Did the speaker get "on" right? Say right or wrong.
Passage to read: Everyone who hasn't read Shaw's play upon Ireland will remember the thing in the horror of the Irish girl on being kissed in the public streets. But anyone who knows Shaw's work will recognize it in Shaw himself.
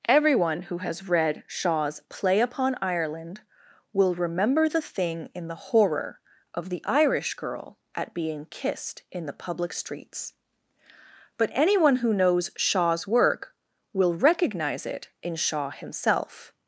wrong